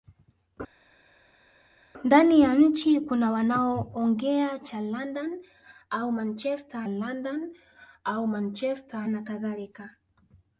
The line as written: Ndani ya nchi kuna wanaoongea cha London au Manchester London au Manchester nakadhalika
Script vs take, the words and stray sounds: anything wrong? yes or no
no